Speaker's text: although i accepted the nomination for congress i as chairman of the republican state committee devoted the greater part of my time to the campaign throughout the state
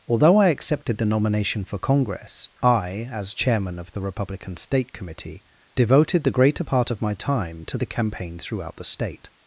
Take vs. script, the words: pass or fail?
pass